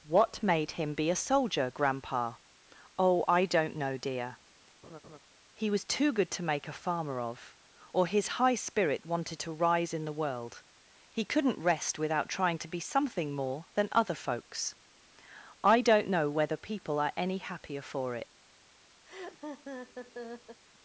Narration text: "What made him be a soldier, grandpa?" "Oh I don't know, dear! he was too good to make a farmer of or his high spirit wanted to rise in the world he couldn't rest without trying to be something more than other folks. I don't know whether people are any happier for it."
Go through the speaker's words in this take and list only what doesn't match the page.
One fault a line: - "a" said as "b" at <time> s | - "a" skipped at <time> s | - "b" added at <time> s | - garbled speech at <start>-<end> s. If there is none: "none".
none